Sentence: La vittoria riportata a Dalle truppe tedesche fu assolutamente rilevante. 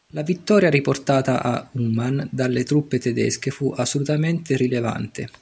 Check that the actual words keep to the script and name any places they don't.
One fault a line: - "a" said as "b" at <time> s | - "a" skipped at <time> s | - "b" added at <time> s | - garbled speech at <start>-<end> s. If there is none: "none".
- "Uman" added at 1.7 s